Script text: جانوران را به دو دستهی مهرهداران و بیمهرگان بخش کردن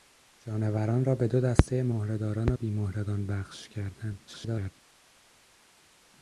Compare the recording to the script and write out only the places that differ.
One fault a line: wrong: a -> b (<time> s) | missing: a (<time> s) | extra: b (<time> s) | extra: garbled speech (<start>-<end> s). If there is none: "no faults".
extra: garbled speech (4.3-4.7 s)